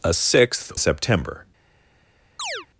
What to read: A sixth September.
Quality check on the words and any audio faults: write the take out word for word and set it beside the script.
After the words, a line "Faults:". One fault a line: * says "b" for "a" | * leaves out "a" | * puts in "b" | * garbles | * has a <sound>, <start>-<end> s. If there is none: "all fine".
A sixth September.
Faults:
* has a chirp, 2.4-2.7 s